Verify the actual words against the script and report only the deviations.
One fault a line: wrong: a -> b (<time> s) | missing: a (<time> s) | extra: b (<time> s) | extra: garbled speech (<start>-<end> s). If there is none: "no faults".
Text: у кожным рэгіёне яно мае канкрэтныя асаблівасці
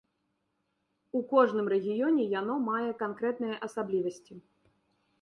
no faults